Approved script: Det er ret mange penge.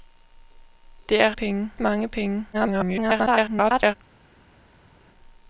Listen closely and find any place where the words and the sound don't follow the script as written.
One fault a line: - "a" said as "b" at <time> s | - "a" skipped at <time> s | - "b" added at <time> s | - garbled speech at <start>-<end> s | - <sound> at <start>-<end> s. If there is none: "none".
- "ret" said as "penge" at 1.3 s
- garbled speech at 2.5-4.0 s